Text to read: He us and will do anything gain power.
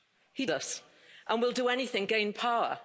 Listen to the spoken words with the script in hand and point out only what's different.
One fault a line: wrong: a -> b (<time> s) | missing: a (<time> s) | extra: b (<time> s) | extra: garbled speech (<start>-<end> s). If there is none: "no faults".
no faults